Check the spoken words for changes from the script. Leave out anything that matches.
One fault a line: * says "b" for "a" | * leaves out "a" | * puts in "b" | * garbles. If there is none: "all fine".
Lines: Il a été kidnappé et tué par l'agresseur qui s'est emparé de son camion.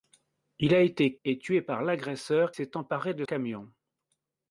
* leaves out "kidnappé"
* leaves out "qui"
* leaves out "son"